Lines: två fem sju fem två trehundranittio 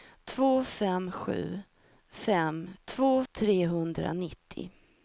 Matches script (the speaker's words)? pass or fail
pass